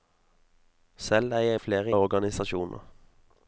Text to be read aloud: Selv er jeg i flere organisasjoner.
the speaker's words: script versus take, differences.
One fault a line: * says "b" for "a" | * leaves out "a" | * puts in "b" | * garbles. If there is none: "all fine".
all fine